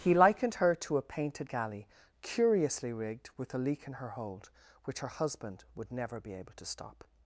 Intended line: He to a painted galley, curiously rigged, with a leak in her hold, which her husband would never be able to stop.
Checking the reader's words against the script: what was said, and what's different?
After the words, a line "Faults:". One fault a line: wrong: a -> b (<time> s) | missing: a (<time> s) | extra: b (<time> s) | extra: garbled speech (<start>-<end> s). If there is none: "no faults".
He likened her to a painted galley, curiously rigged, with a leak in her hold, which her husband would never be able to stop.
Faults:
extra: likened her (0.1 s)